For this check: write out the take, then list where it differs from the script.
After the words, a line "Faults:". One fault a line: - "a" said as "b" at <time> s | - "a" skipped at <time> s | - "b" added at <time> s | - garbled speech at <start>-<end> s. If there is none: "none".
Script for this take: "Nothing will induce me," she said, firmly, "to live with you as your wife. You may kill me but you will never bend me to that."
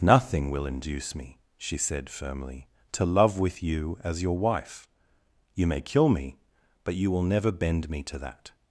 "Nothing will induce me," she said, firmly, "to love with you as your wife. You may kill me but you will never bend me to that."
Faults:
- "live" said as "love" at 3.0 s